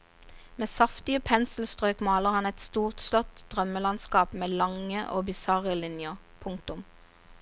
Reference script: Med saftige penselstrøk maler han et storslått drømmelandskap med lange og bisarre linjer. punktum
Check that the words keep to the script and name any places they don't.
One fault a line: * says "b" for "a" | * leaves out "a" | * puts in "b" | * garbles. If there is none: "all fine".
all fine